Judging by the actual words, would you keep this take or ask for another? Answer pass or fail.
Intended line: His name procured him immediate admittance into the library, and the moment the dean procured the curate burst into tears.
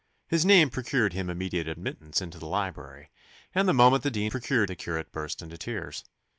pass